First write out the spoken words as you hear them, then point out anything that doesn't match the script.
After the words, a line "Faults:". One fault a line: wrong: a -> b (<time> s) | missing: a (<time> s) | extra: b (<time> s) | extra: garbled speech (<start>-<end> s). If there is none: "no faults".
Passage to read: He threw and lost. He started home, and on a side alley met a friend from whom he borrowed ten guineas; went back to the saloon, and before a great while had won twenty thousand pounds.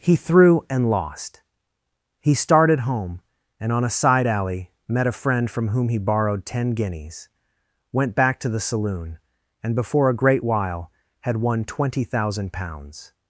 He threw and lost. He started home, and on a side alley met a friend from whom he borrowed ten guineas; went back to the saloon, and before a great while had won twenty thousand pounds.
Faults:
no faults